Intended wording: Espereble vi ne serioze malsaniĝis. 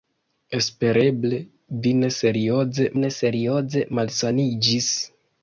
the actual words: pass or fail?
fail